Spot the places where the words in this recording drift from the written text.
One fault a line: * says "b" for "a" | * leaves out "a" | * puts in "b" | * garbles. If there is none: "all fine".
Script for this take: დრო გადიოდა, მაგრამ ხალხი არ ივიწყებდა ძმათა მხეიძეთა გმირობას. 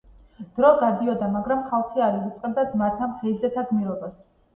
all fine